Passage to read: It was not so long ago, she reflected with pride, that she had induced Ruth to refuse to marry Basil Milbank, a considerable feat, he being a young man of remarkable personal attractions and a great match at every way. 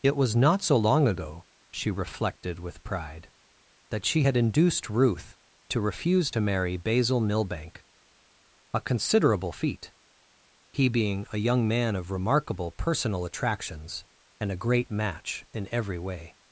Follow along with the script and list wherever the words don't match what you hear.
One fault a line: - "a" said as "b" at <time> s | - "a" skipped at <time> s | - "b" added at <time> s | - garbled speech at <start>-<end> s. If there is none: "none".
- "at" said as "in" at 15.5 s